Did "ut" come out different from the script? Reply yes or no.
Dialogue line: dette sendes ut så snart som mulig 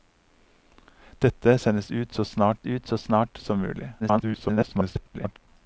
no